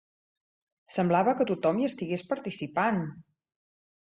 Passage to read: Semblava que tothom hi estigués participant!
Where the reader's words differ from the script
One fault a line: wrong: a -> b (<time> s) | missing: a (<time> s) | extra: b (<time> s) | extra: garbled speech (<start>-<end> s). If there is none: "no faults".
no faults